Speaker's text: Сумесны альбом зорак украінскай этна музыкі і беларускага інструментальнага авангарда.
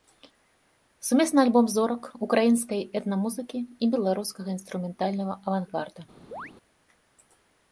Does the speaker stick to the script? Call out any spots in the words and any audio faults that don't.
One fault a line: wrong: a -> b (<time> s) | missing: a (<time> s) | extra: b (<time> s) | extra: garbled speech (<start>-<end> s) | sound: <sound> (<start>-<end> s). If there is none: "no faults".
sound: chirp (6.3-6.5 s)